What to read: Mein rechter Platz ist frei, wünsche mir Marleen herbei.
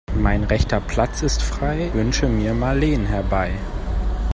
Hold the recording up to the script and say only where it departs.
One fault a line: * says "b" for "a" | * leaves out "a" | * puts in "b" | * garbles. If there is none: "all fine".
all fine